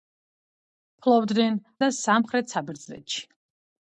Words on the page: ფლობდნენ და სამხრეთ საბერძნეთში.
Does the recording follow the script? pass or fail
pass